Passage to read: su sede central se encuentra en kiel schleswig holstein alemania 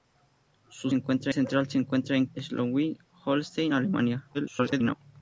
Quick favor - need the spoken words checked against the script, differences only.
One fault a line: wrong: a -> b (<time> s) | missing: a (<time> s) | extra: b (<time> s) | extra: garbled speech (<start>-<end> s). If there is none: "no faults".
wrong: sede -> encuentra (0.9 s)
missing: kiel (2.3 s)
extra: garbled speech (4.3-4.9 s)